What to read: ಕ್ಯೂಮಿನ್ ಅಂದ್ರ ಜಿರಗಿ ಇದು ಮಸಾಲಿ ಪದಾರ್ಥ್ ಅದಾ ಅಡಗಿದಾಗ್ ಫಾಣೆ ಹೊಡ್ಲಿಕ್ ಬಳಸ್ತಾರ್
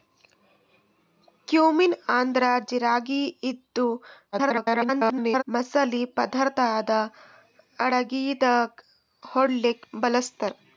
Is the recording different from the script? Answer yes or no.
yes